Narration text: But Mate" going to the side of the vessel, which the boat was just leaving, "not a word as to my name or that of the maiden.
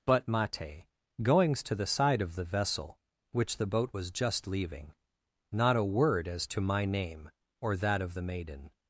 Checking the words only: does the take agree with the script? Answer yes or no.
no